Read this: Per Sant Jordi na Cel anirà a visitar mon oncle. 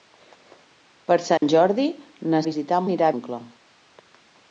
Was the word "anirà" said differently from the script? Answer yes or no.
yes